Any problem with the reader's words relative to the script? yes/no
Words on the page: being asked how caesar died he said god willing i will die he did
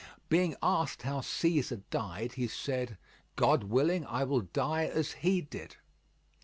yes